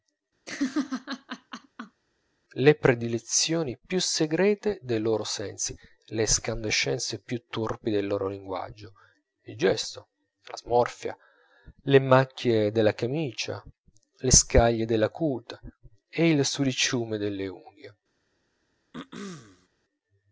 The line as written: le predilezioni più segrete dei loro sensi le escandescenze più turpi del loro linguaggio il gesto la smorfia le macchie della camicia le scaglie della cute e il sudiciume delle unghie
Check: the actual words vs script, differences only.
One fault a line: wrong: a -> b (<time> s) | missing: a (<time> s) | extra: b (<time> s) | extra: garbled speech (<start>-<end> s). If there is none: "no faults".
no faults